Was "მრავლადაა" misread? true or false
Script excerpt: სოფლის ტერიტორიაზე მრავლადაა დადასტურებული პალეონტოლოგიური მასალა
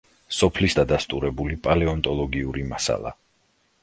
true